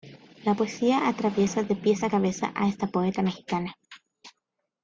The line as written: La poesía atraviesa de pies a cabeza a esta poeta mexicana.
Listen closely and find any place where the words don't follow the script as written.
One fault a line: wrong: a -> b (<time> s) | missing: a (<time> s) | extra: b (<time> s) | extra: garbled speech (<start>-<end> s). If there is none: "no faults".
no faults